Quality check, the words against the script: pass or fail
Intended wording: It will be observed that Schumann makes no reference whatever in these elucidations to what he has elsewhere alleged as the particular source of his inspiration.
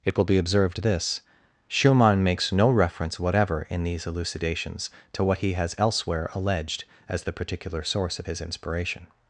fail